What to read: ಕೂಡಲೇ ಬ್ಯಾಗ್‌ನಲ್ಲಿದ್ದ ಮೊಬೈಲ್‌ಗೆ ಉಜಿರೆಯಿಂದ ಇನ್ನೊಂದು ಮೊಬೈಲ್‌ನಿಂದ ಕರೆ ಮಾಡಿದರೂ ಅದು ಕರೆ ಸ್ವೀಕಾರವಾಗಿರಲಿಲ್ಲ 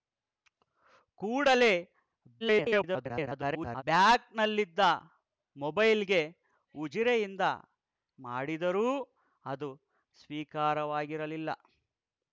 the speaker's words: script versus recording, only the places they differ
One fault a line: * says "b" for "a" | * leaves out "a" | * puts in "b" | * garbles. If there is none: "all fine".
* garbles
* leaves out "ಇನ್ನೊಂದು ಮೊಬೈಲ್‌ನಿಂದ ಕರೆ"
* leaves out "ಕರೆ"